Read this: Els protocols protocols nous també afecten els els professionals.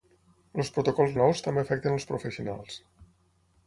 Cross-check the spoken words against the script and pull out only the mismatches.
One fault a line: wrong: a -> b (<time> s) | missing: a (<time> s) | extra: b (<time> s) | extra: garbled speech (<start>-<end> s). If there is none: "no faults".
missing: protocols (1.1 s)
missing: els (2.1 s)